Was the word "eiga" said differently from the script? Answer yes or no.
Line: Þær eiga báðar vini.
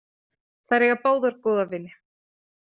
no